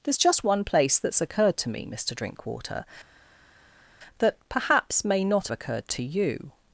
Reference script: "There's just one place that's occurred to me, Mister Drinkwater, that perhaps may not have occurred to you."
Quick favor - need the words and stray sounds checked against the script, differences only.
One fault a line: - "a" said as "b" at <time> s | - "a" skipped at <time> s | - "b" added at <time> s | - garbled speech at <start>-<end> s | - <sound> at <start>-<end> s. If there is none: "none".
- "have" skipped at 5.5 s